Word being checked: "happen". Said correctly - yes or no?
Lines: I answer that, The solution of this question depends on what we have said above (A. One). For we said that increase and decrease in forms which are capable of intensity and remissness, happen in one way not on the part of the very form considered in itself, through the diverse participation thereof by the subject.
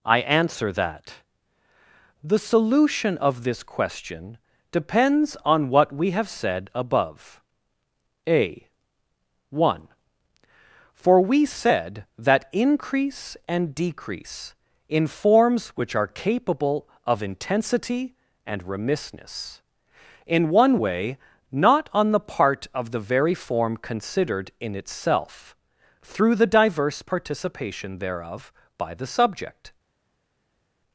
no